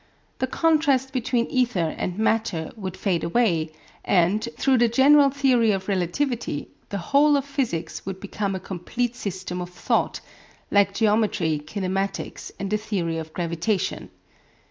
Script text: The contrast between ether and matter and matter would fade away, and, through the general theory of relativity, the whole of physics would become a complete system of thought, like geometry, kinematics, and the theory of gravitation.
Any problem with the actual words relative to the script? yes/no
yes